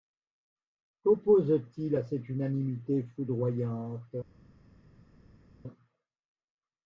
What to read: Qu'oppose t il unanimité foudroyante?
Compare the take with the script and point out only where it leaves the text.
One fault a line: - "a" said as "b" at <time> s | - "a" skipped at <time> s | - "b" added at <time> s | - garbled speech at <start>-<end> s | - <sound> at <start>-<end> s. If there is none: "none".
- "à cette" added at 1.9 s